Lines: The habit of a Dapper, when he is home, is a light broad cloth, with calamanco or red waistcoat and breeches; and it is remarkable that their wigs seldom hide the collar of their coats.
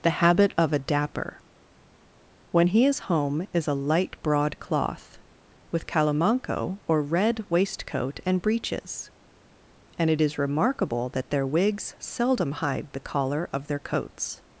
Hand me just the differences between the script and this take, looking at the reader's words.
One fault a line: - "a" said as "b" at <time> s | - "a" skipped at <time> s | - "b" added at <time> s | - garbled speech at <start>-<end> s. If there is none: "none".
none